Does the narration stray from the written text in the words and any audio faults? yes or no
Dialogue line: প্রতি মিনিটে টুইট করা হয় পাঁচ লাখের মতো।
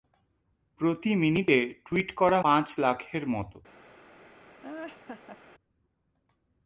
yes